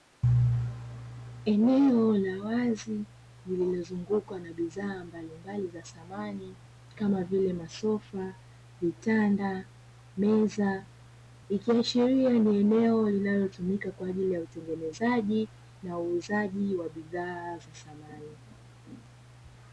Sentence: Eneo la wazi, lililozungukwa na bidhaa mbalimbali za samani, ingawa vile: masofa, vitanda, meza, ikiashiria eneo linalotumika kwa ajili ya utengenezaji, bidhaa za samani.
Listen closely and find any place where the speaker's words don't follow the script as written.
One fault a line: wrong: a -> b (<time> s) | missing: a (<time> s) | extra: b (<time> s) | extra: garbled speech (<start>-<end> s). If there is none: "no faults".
wrong: ingawa -> kama (7.0 s)
extra: ni (12.3 s)
extra: na uuzaji wa (15.8 s)